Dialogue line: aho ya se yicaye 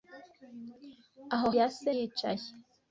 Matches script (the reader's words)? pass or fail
pass